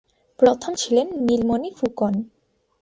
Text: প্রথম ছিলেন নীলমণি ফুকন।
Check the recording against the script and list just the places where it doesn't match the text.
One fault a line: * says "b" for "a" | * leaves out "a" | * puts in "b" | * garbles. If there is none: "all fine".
all fine